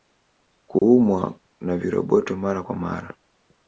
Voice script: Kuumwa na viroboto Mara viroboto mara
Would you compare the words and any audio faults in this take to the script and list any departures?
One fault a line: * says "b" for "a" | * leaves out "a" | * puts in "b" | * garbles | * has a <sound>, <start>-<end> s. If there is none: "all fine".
* has a dropout, 0.8-0.8 s
* says "kwa" for "viroboto"